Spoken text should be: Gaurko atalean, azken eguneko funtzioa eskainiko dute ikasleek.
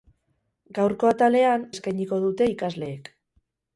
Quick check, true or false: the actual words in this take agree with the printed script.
false